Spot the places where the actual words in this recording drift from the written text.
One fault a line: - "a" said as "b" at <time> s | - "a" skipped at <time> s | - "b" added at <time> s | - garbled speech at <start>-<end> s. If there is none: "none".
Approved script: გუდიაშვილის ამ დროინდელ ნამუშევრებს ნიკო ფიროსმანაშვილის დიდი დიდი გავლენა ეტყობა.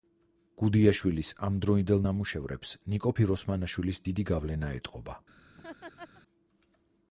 - "დიდი" skipped at 4.3 s